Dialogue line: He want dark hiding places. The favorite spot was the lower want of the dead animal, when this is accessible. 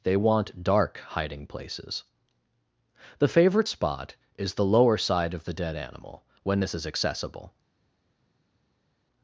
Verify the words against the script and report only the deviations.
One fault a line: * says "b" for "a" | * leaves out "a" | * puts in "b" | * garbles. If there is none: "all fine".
* says "They" for "He"
* says "is" for "was"
* says "side" for "want"